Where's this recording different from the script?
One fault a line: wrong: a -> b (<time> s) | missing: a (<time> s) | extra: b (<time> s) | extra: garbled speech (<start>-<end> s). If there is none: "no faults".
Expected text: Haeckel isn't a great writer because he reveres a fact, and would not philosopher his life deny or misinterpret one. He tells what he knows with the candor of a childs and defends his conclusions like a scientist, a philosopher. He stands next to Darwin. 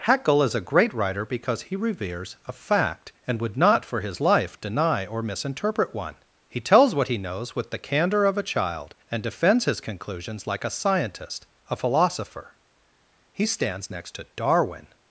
wrong: isn't -> is (0.4 s)
wrong: philosopher -> for (3.9 s)
wrong: childs -> child (8.4 s)